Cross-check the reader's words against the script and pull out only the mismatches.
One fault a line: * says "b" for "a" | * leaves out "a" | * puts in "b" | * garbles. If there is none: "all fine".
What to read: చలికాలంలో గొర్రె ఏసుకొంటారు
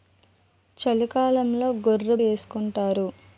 all fine